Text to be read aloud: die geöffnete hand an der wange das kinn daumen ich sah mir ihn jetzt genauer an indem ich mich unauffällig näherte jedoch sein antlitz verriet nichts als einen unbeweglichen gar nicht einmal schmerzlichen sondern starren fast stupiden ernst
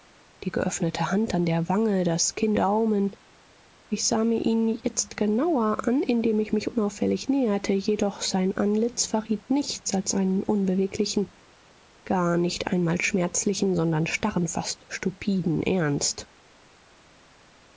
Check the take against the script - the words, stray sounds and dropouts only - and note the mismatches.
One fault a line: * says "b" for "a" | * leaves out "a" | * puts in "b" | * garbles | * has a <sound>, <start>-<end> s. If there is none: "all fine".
all fine